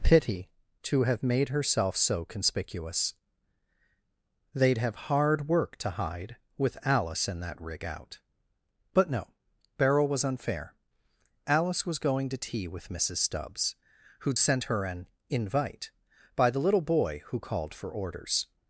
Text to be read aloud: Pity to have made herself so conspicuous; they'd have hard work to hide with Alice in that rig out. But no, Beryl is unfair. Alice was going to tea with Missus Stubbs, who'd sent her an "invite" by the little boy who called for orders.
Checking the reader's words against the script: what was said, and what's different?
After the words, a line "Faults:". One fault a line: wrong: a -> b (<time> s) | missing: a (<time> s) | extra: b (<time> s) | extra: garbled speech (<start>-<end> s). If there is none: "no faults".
Pity to have made herself so conspicuous; they'd have hard work to hide with Alice in that rig out. But no, Beryl was unfair. Alice was going to tea with Missus Stubbs, who'd sent her an "invite" by the little boy who called for orders.
Faults:
wrong: is -> was (10.1 s)